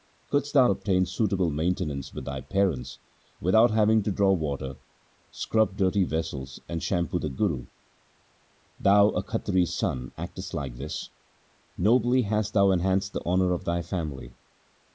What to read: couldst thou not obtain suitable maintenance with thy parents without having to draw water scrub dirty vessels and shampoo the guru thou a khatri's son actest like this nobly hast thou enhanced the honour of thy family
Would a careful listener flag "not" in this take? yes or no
yes